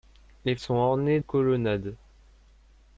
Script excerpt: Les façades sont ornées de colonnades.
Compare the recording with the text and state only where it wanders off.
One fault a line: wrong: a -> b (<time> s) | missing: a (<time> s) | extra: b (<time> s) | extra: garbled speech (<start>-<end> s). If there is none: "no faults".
missing: façades (0.6 s)
missing: de (1.2 s)